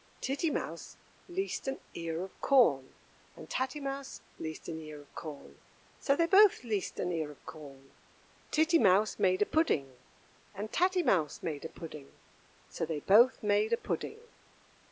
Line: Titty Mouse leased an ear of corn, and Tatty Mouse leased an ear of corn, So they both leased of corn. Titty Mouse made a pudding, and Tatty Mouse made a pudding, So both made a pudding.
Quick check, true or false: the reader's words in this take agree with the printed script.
false